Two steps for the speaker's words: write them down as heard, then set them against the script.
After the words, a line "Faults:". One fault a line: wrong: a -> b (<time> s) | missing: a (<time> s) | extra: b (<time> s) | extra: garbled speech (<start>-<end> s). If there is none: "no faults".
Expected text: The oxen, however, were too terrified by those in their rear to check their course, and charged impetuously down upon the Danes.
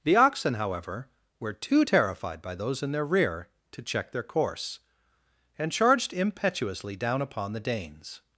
The oxen, however, were too terrified by those in their rear to check their course, and charged impetuously down upon the Danes.
Faults:
no faults